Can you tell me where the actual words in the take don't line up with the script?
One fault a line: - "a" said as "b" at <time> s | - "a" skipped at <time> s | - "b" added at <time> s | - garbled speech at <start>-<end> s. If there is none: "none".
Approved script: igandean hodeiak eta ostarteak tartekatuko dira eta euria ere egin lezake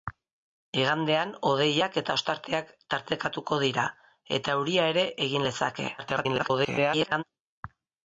- garbled speech at 6.0-7.2 s